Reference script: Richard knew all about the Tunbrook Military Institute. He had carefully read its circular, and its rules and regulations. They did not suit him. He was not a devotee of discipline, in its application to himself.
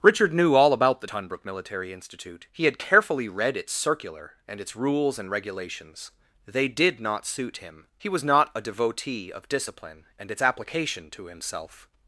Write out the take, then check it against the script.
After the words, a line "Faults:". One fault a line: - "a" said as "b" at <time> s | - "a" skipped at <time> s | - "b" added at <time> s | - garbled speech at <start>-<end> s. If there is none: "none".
Richard knew all about the Tunbrook Military Institute. He had carefully read its circular, and its rules and regulations. They did not suit him. He was not a devotee of discipline, and its application to himself.
Faults:
- "in" said as "and" at 10.2 s